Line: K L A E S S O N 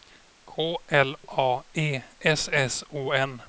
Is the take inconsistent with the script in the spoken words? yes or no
no